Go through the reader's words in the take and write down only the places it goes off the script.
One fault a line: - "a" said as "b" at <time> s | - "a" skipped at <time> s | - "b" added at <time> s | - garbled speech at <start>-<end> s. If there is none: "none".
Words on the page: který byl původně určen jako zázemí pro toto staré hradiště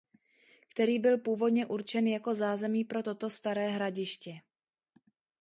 none